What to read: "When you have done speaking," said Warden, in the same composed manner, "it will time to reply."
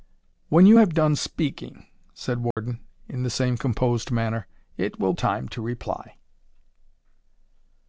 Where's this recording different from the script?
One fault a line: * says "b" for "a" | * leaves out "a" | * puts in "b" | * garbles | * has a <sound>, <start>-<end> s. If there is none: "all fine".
* has a dropout, 2.5-2.6 s